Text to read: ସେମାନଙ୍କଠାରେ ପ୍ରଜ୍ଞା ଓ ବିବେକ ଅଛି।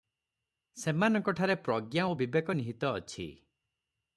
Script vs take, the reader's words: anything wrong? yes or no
yes